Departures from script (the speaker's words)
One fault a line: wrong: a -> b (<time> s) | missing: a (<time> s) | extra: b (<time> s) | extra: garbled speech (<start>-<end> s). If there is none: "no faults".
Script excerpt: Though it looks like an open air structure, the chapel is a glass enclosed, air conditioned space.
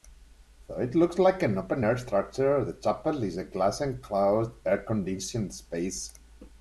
no faults